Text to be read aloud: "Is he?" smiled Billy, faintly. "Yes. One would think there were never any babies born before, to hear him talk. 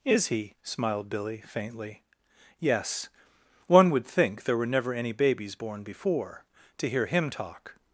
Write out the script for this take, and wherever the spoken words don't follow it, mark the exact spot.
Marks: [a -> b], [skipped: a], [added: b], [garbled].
"Is he?" smiled Billy, faintly. "Yes. One would think there were never any babies born before, to hear him talk.